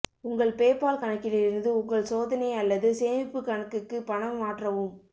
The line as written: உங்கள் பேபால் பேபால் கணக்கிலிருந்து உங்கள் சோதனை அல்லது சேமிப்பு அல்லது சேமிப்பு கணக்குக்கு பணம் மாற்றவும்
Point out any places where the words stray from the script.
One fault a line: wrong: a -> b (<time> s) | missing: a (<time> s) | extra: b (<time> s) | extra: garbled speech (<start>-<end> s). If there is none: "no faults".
missing: பேபால் (1.0 s)
missing: அல்லது சேமிப்பு (3.4 s)